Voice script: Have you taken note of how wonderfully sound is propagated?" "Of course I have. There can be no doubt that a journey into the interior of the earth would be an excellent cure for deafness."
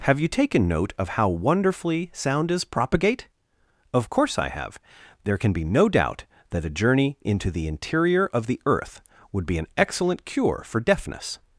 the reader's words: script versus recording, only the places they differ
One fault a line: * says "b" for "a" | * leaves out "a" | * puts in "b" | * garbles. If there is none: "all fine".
* says "propagate" for "propagated"